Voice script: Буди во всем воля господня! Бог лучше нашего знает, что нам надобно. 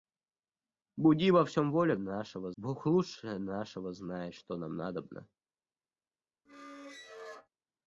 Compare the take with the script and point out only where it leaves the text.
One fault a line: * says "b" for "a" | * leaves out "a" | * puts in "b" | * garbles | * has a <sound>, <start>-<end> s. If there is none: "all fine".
* says "нашего" for "господня"
* has a squeak, 6.5-7.5 s